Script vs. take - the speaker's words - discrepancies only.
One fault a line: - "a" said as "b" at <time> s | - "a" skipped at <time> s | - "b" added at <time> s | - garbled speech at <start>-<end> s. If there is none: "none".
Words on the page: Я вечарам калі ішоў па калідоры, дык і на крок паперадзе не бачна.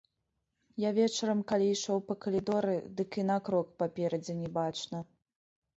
none